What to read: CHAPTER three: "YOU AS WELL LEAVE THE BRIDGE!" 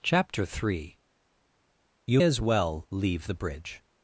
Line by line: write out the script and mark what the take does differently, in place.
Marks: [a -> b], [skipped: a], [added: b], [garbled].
CHAPTER three: "YOU AS WELL LEAVE THE BRIDGE!"